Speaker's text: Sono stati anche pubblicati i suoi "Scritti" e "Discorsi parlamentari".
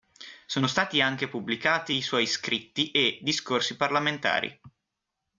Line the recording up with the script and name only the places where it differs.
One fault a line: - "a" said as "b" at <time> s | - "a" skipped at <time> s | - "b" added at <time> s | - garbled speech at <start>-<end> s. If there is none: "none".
none